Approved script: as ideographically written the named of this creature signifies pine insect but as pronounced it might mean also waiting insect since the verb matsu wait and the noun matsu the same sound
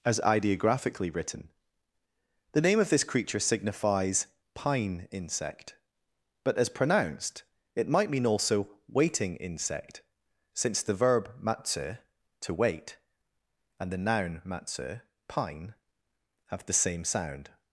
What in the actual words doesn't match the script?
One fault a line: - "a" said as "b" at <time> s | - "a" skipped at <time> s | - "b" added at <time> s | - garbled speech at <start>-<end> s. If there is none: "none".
- "named" said as "name" at 2.6 s
- "to" added at 12.4 s
- "pine have" added at 15.3 s